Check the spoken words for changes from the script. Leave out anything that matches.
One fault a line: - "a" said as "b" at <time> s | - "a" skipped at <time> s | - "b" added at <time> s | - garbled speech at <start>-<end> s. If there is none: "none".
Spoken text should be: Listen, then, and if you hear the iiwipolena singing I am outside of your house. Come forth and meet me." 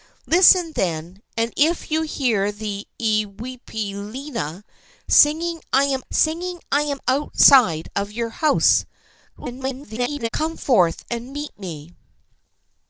- "singing I am" added at 6.1 s
- garbled speech at 9.3-10.3 s